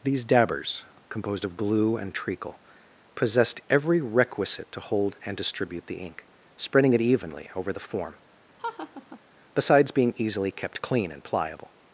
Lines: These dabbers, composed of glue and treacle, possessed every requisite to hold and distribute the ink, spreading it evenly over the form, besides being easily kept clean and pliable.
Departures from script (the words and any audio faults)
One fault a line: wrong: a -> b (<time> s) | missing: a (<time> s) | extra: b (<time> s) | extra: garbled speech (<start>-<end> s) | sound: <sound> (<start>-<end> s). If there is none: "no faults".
sound: laugh (8.6-9.2 s)